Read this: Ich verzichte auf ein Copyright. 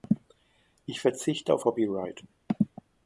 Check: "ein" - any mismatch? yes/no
yes